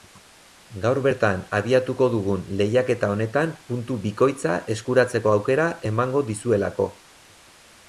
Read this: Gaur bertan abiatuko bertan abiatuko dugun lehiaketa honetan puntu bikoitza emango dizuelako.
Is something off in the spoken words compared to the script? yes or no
yes